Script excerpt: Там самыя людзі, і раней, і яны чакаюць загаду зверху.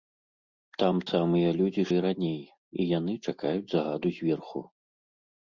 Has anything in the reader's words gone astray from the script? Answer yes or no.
no